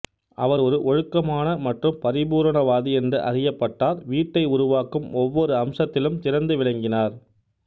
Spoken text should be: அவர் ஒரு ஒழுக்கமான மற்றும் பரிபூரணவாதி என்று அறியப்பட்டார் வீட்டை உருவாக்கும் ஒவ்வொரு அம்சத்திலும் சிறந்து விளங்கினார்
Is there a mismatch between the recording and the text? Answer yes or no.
no